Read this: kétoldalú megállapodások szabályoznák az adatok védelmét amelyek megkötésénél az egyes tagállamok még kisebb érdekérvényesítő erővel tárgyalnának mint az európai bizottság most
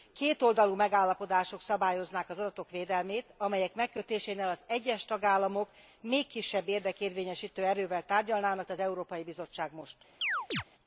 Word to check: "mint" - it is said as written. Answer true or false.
false